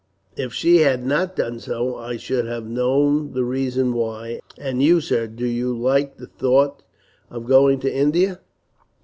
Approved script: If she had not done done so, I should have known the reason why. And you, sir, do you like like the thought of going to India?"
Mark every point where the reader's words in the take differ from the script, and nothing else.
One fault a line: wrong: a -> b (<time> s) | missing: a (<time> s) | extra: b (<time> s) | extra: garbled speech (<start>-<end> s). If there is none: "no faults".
missing: done (1.6 s)
missing: like (6.2 s)